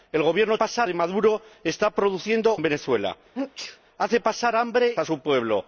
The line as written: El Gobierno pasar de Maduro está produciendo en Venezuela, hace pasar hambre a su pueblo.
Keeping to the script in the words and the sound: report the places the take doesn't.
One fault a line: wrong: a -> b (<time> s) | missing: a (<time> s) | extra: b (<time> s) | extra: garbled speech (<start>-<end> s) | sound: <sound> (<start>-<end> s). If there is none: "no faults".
sound: sneeze (3.3-3.8 s)